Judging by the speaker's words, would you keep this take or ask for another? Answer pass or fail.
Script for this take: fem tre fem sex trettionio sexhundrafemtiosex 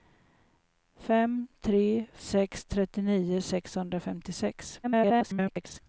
fail